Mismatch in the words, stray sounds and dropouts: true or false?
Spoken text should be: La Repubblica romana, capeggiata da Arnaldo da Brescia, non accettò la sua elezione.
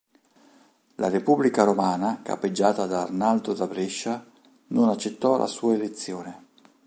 false